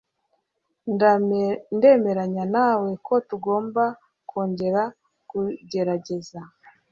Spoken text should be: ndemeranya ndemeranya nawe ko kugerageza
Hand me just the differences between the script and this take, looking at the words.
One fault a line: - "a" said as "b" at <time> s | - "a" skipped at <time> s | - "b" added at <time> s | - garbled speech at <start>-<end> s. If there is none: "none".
- "ndemeranya" skipped at 2.4 s
- "tugomba kongera" added at 3.3 s